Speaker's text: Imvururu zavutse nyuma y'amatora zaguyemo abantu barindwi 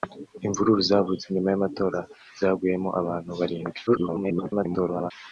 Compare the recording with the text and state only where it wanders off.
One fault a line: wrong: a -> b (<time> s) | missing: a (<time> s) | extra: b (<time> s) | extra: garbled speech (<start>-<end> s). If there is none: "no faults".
extra: garbled speech (3.9-5.1 s)